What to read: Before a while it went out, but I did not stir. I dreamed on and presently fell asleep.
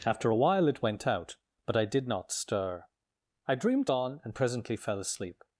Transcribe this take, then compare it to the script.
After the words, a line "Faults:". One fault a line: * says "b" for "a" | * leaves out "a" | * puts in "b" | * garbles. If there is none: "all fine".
After a while it went out, but I did not stir. I dreamed on and presently fell asleep.
Faults:
* says "After" for "Before"